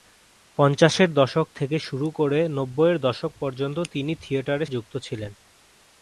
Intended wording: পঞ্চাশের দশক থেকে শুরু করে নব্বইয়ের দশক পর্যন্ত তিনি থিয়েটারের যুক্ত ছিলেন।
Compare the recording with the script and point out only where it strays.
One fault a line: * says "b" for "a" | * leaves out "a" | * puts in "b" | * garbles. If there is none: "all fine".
all fine